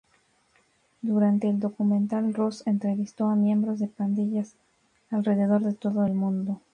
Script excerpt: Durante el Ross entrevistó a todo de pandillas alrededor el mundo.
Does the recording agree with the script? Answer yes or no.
no